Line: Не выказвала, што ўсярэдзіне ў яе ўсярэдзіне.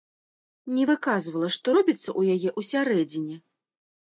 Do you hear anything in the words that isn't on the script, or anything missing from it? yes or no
yes